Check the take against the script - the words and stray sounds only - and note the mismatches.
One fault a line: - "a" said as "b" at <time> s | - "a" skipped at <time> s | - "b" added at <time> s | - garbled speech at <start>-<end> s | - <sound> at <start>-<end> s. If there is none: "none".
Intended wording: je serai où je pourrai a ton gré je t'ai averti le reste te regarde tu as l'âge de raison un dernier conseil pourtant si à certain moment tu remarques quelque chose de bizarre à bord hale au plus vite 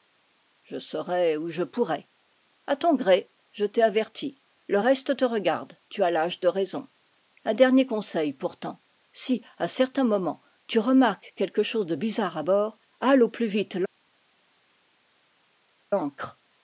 none